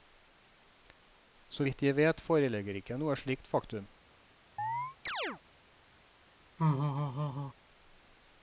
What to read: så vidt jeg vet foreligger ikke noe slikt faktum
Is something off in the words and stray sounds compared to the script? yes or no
yes